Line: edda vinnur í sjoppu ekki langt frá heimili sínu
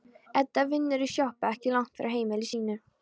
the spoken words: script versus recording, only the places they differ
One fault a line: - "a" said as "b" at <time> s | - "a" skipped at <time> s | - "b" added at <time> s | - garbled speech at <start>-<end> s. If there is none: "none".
none